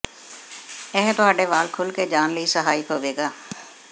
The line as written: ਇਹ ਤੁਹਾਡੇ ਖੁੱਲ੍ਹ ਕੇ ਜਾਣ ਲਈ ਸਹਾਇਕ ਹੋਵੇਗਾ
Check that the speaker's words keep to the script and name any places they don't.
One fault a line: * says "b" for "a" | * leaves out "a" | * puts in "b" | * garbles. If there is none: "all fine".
* puts in "ਵਾਲ"